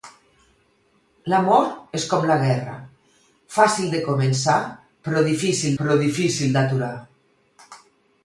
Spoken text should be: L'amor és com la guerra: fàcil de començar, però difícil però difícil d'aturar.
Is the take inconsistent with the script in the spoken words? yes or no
no